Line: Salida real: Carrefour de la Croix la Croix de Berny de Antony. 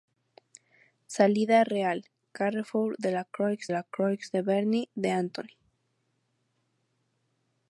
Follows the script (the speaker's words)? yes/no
yes